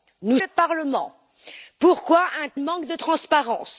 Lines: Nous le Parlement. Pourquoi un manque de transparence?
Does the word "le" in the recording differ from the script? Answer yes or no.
no